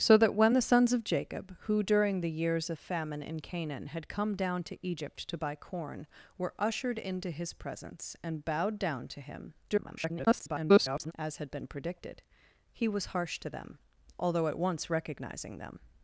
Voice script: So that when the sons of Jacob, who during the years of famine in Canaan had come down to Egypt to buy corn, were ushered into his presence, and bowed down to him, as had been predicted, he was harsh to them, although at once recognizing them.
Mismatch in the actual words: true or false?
true